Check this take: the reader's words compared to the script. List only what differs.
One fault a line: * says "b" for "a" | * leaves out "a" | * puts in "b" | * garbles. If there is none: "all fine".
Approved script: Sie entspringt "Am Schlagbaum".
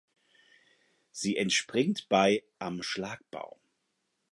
* puts in "bei"